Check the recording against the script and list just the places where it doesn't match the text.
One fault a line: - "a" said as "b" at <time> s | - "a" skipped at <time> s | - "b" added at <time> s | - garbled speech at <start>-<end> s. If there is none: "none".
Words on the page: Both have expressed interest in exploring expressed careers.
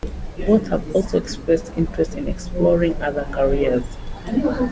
- "also" added at 1.0 s
- "expressed" said as "other" at 3.0 s